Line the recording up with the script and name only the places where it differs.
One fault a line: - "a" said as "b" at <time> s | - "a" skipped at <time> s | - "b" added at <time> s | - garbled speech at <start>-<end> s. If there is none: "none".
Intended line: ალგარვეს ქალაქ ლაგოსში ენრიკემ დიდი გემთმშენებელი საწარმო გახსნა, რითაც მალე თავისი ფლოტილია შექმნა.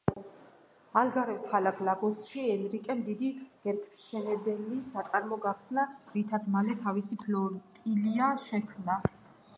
none